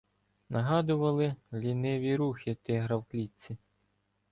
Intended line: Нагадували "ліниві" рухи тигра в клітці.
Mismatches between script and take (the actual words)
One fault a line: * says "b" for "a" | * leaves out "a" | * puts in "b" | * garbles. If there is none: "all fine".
all fine